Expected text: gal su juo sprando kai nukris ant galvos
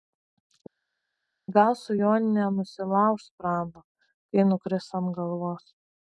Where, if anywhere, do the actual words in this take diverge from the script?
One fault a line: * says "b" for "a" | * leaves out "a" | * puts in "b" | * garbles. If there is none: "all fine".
* puts in "nenusilauš"